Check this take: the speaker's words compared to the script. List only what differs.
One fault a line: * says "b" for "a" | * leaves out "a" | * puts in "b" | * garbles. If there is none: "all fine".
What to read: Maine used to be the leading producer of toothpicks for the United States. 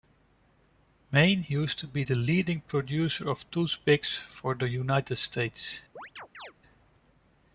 all fine